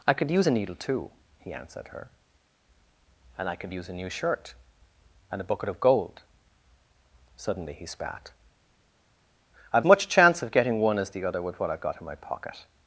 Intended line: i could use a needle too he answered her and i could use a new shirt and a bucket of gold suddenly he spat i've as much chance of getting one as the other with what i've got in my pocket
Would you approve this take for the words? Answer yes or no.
no